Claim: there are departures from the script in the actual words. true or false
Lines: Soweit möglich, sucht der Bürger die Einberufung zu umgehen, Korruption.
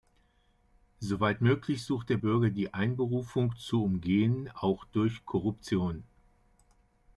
true